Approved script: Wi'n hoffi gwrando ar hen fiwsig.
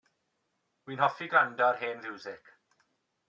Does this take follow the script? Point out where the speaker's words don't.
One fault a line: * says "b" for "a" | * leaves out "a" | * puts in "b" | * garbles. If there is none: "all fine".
all fine